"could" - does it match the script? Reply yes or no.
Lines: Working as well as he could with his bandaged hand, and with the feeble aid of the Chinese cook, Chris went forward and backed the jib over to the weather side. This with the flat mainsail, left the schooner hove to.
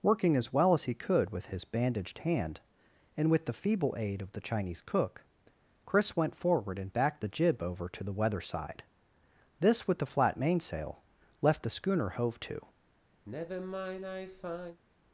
yes